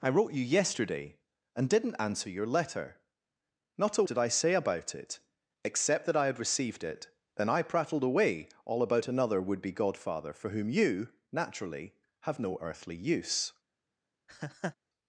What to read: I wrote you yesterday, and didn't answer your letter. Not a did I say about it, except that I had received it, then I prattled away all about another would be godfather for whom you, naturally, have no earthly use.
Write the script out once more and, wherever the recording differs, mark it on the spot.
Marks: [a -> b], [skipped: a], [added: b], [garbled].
I wrote you yesterday, and didn't answer your letter. Not a did I say about it, except that I had received it, then I prattled away all about another would be godfather for whom you, naturally, have no earthly use.